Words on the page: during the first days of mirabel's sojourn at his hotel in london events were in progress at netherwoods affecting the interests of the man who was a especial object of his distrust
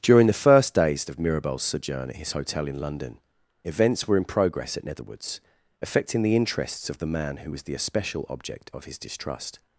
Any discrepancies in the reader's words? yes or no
yes